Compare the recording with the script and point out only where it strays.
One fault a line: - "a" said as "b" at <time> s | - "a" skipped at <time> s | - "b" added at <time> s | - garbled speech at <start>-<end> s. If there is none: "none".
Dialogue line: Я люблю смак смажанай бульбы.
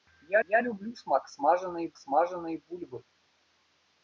- "я" added at 0.5 s
- "смажанай" added at 2.0 s